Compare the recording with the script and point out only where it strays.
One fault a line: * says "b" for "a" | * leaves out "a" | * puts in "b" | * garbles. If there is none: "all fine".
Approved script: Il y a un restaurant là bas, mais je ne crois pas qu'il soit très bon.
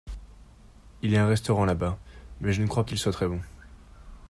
* leaves out "pas"